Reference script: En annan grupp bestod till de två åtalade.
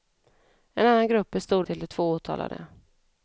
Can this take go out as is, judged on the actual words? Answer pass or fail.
pass